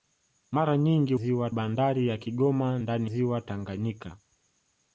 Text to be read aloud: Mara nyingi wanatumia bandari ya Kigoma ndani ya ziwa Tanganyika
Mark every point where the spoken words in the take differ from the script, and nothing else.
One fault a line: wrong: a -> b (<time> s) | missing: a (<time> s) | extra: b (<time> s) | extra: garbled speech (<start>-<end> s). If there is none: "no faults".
wrong: wanatumia -> ziwa (1.1 s)
missing: ya (3.1 s)